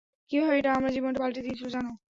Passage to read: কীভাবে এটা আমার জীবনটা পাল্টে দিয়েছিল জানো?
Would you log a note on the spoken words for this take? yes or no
no